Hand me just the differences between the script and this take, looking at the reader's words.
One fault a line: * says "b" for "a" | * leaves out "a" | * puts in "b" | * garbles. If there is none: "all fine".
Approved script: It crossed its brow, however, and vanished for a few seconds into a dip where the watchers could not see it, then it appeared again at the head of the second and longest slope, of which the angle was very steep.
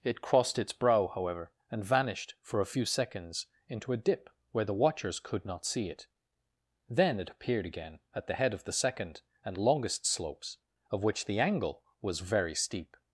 * says "slopes" for "slope"